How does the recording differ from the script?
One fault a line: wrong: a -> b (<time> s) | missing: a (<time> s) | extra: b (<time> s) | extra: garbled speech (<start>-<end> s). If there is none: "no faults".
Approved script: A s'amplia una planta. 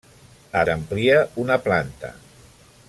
no faults